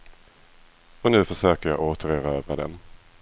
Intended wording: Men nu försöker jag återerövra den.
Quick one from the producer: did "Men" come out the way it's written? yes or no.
no